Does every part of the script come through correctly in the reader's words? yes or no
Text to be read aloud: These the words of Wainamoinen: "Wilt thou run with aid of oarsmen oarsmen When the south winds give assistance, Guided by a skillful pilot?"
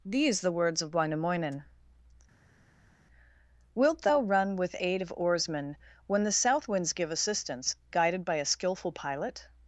no